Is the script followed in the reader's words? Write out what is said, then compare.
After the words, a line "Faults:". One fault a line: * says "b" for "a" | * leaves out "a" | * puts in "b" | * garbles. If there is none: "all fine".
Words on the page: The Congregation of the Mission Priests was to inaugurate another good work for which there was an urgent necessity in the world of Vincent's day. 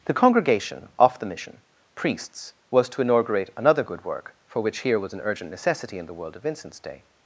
The Congregation off the Mission Priests was to inaugurate another good work for which here was an urgent necessity in the world of Vincent's day.
Faults:
* says "off" for "of"
* says "here" for "there"